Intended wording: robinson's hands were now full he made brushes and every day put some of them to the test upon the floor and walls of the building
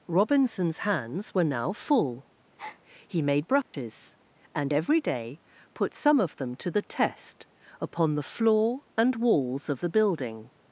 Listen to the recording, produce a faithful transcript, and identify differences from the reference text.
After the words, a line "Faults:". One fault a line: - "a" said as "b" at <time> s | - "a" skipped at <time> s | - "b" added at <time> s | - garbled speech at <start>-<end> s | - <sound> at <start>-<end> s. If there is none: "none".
robinson's hands were now full he made brushes and every day put some of them to the test upon the floor and walls of the building
Faults:
- breath at 2.6-2.8 s
- dropout at 3.6-3.7 s